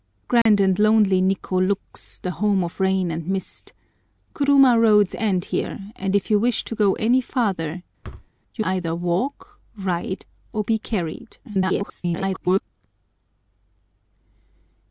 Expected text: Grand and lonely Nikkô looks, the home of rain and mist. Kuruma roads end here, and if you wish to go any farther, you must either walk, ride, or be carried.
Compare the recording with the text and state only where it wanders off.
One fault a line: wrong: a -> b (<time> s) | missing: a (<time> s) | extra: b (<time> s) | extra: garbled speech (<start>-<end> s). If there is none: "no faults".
missing: must (8.6 s)
extra: garbled speech (11.4-12.6 s)